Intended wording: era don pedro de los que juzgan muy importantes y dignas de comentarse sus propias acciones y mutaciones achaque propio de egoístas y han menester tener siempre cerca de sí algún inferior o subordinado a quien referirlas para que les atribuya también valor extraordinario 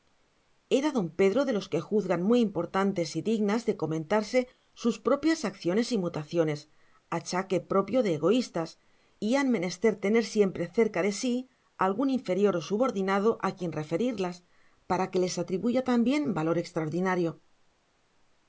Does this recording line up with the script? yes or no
yes